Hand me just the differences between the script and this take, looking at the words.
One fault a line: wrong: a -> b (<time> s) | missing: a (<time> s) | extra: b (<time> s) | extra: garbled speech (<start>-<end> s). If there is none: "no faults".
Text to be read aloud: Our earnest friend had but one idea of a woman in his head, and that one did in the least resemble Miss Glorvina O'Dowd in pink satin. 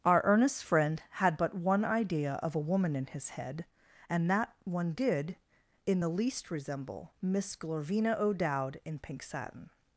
no faults